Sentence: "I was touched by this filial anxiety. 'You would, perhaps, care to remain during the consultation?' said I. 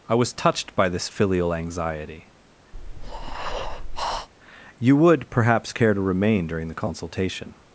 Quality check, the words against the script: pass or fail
fail